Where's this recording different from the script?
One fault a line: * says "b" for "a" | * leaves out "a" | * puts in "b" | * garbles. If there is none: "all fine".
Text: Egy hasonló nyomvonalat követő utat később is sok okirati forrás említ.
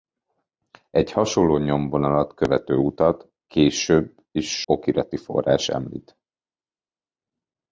* leaves out "sok"